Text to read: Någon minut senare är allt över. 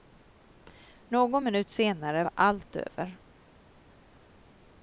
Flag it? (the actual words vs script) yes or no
yes